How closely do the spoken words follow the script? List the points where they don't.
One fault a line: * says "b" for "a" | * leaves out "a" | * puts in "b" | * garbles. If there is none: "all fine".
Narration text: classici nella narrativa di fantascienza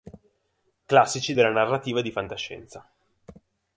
* says "della" for "nella"